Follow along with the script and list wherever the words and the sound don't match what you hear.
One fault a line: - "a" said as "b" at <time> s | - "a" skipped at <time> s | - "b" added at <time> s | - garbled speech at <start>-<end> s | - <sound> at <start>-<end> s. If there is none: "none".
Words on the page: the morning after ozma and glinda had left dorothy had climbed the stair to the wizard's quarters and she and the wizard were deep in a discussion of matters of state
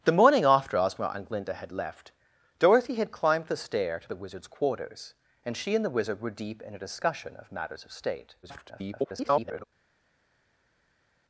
- garbled speech at 8.4-9.6 s